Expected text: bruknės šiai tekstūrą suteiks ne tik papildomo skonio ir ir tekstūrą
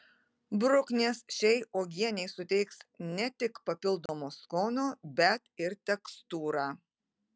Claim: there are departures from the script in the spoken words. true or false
true